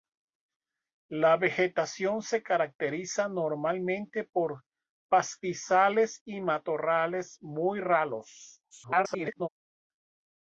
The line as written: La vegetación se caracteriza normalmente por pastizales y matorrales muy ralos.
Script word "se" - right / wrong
right